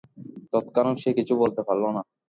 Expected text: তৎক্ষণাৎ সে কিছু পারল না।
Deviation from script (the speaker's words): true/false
true